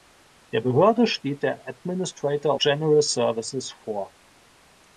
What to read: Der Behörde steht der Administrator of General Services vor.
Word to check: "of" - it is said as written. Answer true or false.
false